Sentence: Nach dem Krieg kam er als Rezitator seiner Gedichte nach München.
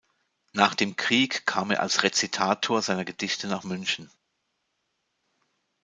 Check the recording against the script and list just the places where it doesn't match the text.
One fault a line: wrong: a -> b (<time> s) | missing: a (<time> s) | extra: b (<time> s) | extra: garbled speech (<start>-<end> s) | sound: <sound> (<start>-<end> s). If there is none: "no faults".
no faults